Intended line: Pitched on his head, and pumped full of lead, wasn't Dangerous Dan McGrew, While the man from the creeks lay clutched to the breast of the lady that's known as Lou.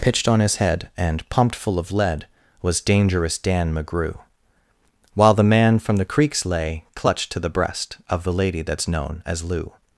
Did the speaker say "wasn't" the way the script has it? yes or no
no